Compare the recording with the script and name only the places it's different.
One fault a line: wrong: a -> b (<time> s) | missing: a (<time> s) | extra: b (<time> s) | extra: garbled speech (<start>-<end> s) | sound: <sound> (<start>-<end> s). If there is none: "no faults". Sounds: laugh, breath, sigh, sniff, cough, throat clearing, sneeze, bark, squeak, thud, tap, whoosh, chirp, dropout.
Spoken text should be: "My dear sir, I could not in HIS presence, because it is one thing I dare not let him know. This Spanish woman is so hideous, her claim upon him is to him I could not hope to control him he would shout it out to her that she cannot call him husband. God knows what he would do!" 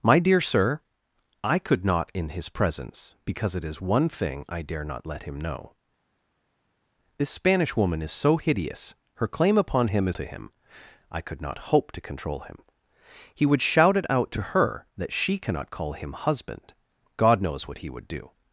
no faults